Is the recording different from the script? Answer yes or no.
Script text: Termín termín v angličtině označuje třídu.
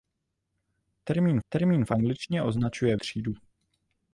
no